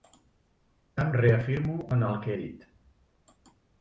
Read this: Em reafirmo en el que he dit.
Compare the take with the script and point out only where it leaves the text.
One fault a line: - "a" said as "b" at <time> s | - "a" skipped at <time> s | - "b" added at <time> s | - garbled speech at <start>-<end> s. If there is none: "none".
- "he" skipped at 2.4 s